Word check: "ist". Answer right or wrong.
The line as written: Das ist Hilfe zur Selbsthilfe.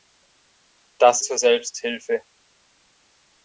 wrong